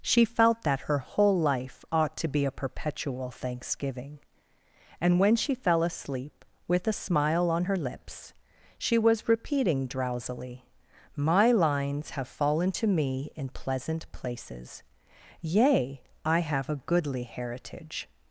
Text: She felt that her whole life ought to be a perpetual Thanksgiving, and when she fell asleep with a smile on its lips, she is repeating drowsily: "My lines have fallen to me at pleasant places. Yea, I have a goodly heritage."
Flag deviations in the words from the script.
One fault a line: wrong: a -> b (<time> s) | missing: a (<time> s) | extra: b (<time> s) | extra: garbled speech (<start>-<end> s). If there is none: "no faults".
wrong: its -> her (7.6 s)
wrong: is -> was (9.0 s)
wrong: at -> in (13.3 s)